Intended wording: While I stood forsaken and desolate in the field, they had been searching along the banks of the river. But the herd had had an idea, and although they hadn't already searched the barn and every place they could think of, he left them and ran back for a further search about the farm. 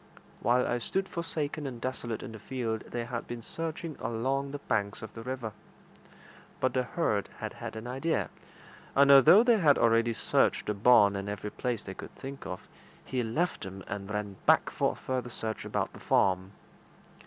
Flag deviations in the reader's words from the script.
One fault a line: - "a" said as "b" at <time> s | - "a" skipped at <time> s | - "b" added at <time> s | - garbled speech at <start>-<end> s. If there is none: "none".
- "hadn't" said as "had" at 9.6 s